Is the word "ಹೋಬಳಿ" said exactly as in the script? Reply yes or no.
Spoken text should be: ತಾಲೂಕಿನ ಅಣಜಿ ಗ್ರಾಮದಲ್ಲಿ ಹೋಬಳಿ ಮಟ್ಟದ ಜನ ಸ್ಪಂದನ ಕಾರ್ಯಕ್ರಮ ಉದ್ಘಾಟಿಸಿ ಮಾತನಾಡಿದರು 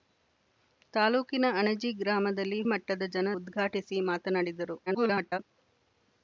no